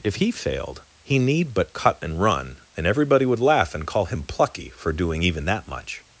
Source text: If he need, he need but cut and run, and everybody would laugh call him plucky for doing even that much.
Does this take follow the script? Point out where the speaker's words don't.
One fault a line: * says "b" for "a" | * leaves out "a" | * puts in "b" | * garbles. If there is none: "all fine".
* says "failed" for "need"
* puts in "and"